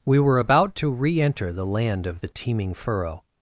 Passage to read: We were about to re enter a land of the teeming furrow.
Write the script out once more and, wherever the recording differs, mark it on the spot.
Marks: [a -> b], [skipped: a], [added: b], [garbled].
We were about to re enter [a -> the] land of the teeming furrow.